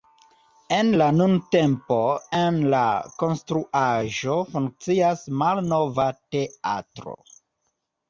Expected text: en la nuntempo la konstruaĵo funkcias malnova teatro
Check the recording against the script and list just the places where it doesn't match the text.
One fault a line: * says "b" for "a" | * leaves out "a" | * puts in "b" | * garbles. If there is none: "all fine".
* puts in "en"